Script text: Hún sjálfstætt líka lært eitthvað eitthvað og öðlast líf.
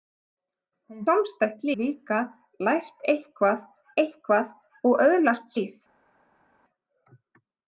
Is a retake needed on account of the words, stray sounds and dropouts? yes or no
no